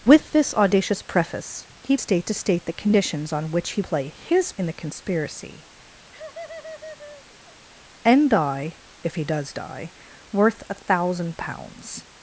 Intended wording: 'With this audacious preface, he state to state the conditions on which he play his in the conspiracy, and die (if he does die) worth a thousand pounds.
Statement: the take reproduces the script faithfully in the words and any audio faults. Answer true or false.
false